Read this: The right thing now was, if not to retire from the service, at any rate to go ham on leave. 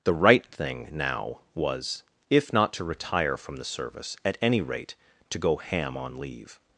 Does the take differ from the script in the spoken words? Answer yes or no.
no